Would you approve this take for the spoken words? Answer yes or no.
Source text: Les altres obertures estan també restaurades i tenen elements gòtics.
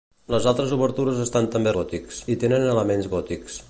no